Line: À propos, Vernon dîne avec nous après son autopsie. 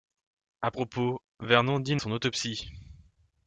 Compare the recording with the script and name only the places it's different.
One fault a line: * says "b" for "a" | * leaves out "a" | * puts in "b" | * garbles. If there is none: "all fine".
* leaves out "avec nous après"